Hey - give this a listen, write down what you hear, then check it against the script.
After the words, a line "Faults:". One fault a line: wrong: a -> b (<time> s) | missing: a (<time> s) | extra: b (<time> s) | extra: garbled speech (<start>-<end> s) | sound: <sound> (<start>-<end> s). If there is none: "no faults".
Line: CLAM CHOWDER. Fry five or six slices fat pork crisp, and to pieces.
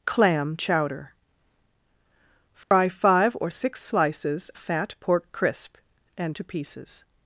CLAM CHOWDER. Fry five or six slices fat pork crisp, and to pieces.
Faults:
sound: dropout (2.6-2.7 s)